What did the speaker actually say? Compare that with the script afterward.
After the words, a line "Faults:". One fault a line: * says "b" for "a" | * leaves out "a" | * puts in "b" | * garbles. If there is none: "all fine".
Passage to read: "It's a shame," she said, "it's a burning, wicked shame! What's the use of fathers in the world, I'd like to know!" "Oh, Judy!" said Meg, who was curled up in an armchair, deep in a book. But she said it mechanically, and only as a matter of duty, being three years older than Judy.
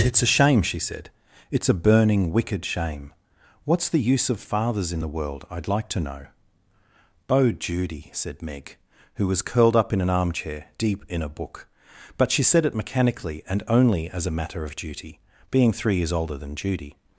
"It's a shame," she said, "it's a burning, wicked shame! What's the use of fathers in the world, I'd like to know!" "Oh, Judy!" said Meg, who was curled up in an armchair, deep in a book. But she said it mechanically, and only as a matter of duty, being three years older than Judy.
Faults:
all fine